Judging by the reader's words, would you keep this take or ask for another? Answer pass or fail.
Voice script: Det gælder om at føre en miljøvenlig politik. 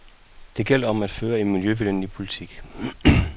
pass